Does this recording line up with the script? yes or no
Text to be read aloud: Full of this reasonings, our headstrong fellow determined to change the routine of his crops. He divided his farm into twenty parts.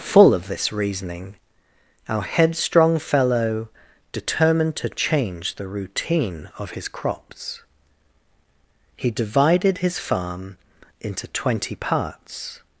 no